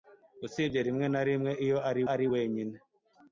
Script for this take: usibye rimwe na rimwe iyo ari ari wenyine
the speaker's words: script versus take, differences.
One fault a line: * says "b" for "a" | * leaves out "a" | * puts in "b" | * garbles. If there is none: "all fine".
all fine